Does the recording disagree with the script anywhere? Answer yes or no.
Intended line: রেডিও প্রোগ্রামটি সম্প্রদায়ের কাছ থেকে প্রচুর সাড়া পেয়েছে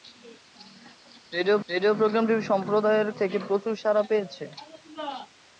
yes